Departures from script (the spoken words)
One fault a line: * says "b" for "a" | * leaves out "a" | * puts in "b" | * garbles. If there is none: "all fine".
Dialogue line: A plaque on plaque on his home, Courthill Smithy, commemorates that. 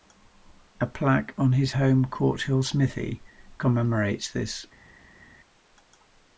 * leaves out "plaque on"
* says "this" for "that"